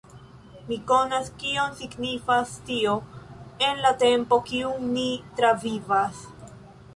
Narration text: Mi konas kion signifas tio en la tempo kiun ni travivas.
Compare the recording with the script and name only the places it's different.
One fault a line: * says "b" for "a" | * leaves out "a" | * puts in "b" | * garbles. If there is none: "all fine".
all fine